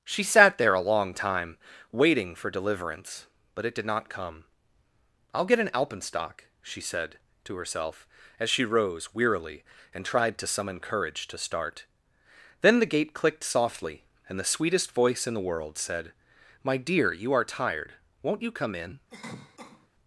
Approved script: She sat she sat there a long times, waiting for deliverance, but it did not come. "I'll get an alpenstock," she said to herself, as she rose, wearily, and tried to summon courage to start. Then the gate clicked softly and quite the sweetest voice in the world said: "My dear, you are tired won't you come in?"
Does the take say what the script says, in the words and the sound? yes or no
no